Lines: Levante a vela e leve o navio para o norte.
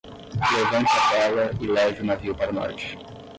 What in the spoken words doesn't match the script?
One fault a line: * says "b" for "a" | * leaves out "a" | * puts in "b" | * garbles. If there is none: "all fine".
all fine